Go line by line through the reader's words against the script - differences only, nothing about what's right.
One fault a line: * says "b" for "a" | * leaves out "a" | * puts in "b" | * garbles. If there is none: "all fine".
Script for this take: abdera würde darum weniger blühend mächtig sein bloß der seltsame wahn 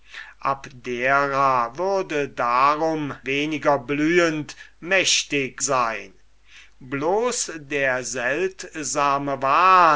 all fine